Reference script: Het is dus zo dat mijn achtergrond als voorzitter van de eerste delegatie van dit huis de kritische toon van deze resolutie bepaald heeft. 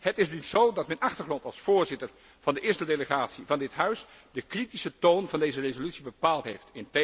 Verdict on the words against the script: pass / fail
pass